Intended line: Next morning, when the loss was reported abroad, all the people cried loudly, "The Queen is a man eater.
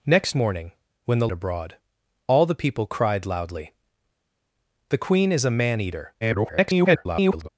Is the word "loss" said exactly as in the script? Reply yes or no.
no